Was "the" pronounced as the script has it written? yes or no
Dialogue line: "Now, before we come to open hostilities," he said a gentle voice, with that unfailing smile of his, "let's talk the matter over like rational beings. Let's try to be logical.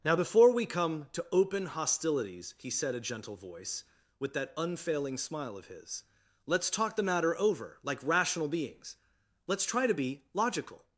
yes